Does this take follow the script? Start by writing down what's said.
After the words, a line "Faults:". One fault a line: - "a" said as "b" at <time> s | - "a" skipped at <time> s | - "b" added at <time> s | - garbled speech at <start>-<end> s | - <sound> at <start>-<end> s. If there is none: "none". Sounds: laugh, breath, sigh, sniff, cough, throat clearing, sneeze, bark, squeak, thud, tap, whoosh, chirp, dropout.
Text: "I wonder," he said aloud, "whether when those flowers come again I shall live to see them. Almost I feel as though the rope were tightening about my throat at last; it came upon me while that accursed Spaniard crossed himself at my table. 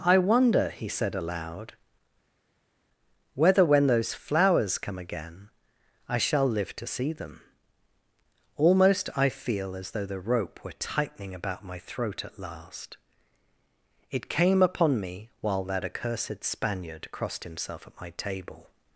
"I wonder," he said aloud, "whether when those flowers come again I shall live to see them. Almost I feel as though the rope were tightening about my throat at last; it came upon me while that accursed Spaniard crossed himself at my table.
Faults:
none